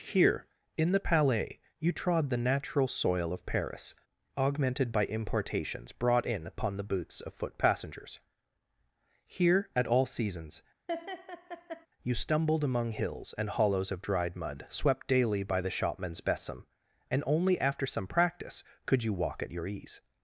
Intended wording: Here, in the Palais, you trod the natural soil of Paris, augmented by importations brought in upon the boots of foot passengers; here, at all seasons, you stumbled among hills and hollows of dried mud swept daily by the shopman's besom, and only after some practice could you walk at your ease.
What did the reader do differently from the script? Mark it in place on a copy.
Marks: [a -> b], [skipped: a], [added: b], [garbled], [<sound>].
Here, in the Palais, you trod the natural soil of Paris, augmented by importations brought in upon the boots of foot passengers; here, at all seasons, [laugh] you stumbled among hills and hollows of dried mud swept daily by the shopman's besom, and only after some practice could you walk at your ease.